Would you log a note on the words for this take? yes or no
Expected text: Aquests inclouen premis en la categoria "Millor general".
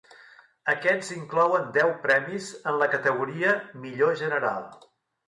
yes